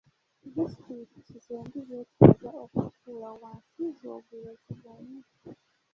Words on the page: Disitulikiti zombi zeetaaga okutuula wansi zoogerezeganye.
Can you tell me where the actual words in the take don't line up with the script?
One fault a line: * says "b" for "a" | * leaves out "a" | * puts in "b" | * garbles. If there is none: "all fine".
all fine